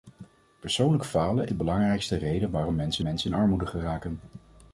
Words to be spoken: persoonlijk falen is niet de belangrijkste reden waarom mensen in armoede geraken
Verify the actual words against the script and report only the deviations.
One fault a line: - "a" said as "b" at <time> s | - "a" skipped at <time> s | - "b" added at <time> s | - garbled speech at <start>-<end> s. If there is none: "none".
- "is niet" skipped at 1.5 s
- "mensen" added at 3.0 s